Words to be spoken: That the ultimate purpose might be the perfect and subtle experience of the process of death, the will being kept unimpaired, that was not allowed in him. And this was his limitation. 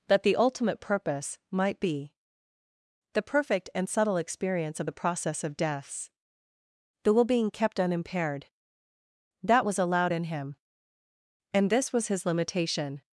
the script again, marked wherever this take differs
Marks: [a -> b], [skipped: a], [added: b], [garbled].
That the ultimate purpose might be the perfect and subtle experience of the process of [death, -> deaths] the will being kept unimpaired, that was [skipped: not] allowed in him. And this was his limitation.